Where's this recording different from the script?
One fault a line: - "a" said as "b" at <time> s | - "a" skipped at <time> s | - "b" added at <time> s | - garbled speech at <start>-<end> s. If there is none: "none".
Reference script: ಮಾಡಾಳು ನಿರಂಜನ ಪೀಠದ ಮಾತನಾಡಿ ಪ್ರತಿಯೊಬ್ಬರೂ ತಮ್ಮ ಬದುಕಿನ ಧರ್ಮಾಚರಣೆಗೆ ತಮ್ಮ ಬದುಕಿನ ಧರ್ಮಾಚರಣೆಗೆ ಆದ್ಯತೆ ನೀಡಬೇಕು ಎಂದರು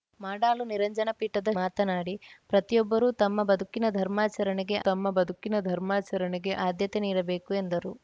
none